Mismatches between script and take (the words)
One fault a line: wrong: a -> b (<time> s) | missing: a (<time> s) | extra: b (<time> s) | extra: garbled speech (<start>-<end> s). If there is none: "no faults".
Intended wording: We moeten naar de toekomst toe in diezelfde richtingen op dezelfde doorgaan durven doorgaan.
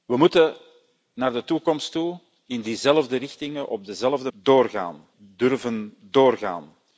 no faults